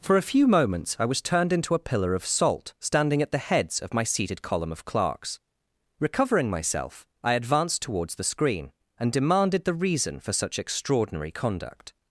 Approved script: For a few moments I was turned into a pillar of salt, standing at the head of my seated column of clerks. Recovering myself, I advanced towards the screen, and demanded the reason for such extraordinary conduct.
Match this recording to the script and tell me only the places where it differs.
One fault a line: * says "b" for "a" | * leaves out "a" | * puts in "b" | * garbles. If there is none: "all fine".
* says "heads" for "head"